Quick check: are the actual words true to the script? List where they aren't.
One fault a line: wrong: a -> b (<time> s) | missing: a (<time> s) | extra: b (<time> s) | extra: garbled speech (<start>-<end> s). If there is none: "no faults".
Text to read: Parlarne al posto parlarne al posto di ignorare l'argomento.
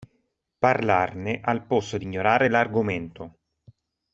missing: parlarne al posto (2.0 s)